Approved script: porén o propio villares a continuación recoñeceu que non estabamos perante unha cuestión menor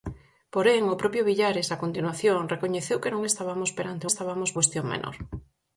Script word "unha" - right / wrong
wrong